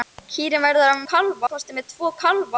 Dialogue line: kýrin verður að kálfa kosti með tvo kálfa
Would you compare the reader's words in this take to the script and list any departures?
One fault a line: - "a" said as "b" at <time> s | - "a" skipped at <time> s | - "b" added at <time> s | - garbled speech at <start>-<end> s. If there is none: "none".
none